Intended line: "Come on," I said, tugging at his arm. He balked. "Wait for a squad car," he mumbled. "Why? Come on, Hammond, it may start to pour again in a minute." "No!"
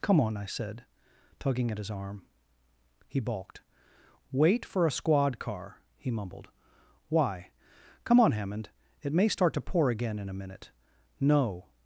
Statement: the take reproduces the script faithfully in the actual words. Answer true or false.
true